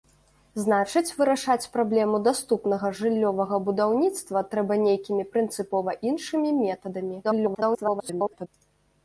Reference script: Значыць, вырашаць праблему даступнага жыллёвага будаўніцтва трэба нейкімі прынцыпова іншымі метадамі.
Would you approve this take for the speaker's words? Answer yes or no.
no